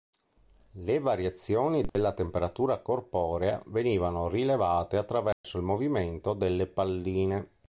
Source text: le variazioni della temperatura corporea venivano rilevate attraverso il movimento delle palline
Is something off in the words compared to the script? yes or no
no